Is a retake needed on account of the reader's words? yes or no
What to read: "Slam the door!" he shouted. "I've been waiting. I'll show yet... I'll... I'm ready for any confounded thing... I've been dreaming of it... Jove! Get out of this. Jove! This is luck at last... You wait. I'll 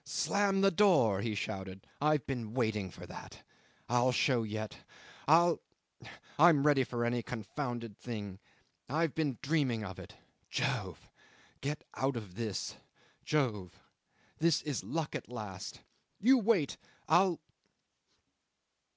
yes